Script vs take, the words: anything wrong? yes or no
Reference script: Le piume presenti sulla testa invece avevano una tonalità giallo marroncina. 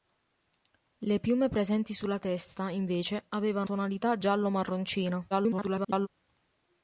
yes